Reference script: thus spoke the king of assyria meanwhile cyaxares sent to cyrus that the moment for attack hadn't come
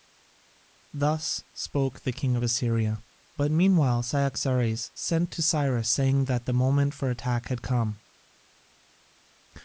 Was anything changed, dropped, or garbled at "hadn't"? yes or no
yes